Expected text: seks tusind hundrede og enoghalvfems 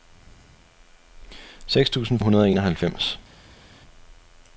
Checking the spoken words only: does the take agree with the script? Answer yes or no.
yes